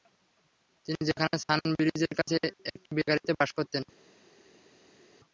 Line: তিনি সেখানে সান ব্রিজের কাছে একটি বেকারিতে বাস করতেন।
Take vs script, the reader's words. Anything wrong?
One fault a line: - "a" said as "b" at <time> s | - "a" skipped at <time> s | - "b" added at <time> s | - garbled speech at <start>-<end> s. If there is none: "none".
none